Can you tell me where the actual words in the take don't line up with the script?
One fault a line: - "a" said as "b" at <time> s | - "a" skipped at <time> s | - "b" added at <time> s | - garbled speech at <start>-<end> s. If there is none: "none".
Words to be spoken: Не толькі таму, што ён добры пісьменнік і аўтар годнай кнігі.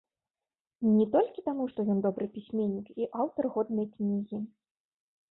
none